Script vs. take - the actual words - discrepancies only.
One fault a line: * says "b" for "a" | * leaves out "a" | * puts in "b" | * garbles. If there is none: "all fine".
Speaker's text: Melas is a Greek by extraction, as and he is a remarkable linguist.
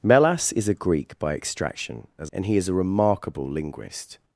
all fine